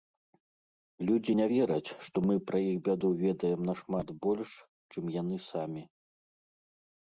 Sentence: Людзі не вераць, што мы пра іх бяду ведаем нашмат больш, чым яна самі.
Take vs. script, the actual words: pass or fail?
fail